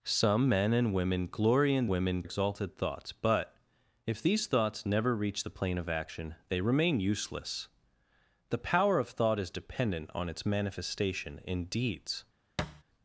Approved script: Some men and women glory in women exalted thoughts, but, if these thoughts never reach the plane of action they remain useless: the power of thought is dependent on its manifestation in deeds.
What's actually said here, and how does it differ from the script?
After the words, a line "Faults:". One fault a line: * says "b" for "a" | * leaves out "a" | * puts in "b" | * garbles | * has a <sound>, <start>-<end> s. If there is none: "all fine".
Some men and women glory in women exalted thoughts, but, if these thoughts never reach the plane of action they remain useless: the power of thought is dependent on its manifestation in deeds.
Faults:
* has a thud, 12.6-12.8 s